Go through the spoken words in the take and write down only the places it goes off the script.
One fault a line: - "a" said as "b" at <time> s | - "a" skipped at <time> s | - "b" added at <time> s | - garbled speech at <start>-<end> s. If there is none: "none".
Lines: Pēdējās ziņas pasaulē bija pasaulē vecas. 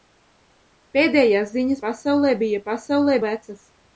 none